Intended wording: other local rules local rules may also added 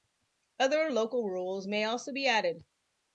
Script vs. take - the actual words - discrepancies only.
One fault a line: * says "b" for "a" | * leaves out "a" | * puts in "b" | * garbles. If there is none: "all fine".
* leaves out "local rules"
* puts in "be"